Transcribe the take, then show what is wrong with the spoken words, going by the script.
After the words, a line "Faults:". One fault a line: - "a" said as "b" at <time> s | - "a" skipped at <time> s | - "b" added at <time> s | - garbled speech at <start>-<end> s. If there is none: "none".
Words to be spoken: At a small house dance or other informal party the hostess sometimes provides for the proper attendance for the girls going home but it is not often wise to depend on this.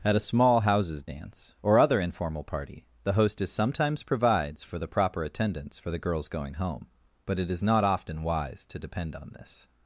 At a small houses dance or other informal party the hostess sometimes provides for the proper attendance for the girls going home but it is not often wise to depend on this.
Faults:
- "house" said as "houses" at 0.6 s